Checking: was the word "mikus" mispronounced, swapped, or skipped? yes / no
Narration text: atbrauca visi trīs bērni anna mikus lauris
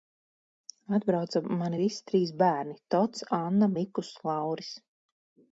no